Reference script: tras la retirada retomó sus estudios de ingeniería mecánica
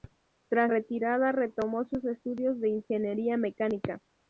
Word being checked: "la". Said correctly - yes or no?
no